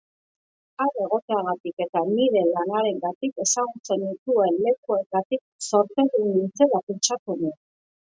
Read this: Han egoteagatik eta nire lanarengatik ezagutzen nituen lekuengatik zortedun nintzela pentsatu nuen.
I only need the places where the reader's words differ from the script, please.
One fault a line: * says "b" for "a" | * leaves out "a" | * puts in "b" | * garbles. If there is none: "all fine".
all fine